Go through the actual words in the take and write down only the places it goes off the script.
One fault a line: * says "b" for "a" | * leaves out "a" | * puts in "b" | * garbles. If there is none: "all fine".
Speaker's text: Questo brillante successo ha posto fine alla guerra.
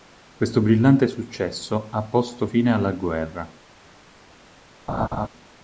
all fine